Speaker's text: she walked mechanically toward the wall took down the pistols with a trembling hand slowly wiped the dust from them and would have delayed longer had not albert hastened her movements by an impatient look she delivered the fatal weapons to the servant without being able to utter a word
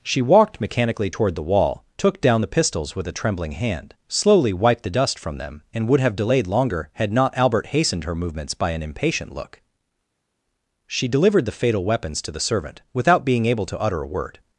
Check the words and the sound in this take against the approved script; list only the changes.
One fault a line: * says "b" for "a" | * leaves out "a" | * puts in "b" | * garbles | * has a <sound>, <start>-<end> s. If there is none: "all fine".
all fine